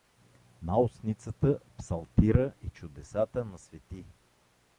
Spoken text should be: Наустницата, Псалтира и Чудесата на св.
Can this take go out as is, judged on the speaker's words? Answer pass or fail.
pass